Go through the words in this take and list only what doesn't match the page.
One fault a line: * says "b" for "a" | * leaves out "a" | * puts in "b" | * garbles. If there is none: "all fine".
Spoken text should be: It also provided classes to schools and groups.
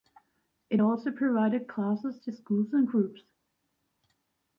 all fine